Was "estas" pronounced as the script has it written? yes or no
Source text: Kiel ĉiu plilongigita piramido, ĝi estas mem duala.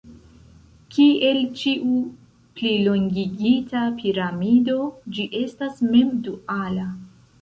yes